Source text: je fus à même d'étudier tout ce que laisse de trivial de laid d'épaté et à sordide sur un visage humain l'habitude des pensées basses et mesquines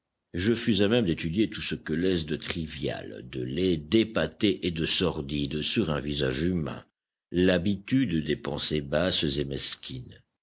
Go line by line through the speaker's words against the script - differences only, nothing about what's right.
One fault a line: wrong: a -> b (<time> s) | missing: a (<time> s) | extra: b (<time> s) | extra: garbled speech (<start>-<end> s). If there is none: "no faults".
wrong: à -> de (4.7 s)